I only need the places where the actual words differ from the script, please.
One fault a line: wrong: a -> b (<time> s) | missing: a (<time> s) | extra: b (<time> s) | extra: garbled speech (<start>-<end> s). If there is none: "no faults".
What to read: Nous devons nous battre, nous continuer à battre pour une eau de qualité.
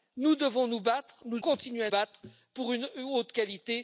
no faults